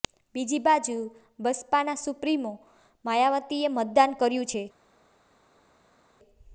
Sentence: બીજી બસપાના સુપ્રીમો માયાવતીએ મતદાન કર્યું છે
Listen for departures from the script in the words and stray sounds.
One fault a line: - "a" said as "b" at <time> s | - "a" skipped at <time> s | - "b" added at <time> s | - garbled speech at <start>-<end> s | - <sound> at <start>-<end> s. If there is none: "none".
- "બાજુ" added at 0.6 s